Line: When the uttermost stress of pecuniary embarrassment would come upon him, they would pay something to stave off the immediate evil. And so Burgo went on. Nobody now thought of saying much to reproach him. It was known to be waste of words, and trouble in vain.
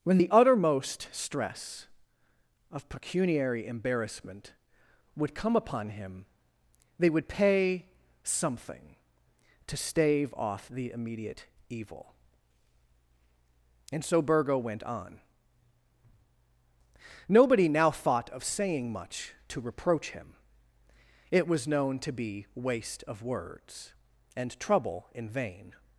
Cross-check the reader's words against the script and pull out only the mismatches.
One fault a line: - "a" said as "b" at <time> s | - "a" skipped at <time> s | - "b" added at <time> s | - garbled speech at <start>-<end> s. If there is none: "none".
none